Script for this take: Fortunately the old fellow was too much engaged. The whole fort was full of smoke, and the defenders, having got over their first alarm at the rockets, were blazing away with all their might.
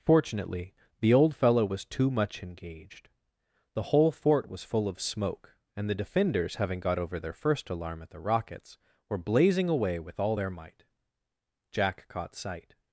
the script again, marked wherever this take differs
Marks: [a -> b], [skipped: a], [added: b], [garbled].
Fortunately the old fellow was too much engaged. The whole fort was full of smoke, and the defenders, having got over their first alarm at the rockets, were blazing away with all their might. [added: Jack caught sight]